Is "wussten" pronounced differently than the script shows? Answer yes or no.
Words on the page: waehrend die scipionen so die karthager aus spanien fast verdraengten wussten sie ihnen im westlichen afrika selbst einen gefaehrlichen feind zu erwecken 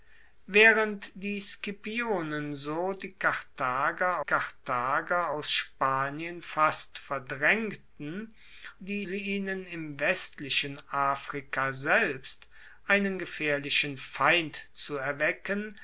yes